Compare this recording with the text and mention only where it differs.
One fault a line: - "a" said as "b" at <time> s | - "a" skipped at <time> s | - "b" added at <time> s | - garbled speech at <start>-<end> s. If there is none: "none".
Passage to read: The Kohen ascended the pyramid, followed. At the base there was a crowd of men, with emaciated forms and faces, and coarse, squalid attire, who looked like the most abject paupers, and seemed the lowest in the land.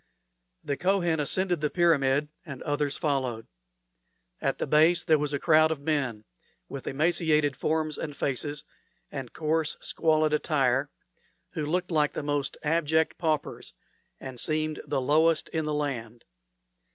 - "and others" added at 2.4 s